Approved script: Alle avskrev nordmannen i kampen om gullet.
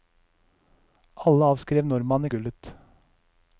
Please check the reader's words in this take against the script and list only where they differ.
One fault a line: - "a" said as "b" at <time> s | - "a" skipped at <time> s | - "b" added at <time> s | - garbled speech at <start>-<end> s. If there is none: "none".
- "kampen om" skipped at 2.3 s